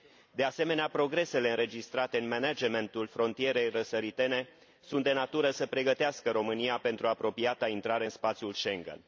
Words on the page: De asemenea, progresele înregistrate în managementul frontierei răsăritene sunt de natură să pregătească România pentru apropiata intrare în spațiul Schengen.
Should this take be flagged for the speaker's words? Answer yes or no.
no